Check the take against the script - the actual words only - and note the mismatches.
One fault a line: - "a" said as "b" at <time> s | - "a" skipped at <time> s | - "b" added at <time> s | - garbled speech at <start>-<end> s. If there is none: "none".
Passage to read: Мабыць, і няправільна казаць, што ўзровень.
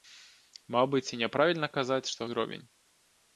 none